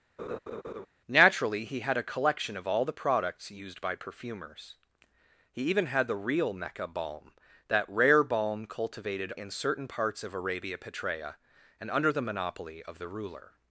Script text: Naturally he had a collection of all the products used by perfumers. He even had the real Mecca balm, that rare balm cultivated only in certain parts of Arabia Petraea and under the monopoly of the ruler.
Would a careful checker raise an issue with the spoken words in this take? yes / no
yes